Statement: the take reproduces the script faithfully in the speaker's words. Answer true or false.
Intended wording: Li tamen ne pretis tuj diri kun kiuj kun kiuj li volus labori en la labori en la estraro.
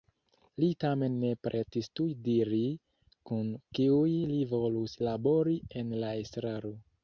false